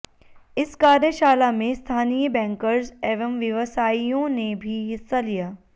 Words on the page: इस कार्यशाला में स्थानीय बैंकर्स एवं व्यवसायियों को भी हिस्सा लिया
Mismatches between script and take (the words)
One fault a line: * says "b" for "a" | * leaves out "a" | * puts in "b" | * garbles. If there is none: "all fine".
* says "ने" for "को"